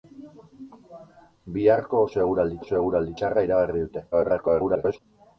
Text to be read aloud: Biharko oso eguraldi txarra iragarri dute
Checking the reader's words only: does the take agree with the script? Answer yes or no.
no